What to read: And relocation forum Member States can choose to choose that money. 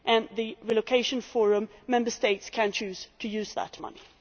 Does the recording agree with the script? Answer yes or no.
no